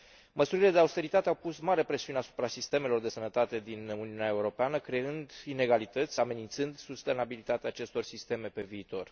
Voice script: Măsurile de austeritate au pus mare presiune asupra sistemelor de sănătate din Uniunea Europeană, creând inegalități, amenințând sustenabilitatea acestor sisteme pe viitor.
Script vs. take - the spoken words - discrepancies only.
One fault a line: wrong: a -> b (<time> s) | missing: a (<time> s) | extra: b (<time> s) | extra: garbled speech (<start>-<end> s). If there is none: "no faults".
no faults